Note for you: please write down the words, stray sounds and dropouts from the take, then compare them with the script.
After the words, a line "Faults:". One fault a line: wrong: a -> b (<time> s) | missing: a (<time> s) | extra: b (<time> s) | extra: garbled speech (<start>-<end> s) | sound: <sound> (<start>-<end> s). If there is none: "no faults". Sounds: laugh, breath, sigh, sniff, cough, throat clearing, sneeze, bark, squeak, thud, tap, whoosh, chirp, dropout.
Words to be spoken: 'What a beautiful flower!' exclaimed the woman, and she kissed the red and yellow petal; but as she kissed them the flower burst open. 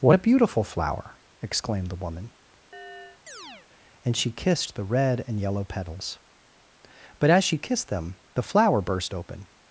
'What a beautiful flower!' exclaimed the woman, and she kissed the red and yellow petals; but as she kissed them the flower burst open.
Faults:
sound: chirp (2.7-3.7 s)
wrong: petal -> petals (5.6 s)